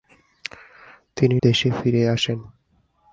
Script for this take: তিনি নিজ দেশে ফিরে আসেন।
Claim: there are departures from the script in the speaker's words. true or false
true